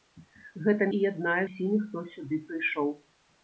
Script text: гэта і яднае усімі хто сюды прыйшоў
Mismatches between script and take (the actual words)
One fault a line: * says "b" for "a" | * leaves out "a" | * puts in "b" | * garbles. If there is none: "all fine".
all fine